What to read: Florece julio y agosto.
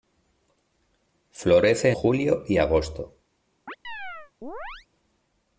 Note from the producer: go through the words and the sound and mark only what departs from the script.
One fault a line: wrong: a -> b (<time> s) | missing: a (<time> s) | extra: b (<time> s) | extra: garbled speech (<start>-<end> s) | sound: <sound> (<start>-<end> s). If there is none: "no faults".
sound: chirp (3.7-4.9 s)